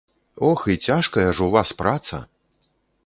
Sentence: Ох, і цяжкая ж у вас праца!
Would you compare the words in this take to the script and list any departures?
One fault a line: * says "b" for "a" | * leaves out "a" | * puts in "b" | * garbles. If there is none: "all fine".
all fine